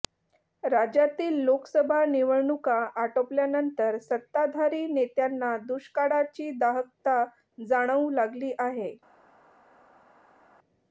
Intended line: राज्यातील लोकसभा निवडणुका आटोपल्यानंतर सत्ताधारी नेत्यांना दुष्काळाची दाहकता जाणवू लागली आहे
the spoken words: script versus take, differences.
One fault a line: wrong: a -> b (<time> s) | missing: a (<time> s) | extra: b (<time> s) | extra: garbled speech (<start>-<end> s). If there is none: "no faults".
no faults